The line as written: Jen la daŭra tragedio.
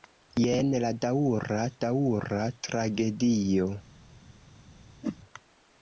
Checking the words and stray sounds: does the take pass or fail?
fail